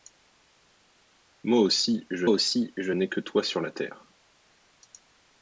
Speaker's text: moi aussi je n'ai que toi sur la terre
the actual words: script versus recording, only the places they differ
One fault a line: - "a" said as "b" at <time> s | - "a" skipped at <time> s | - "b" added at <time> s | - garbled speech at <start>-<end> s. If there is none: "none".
- "aussi je" added at 2.3 s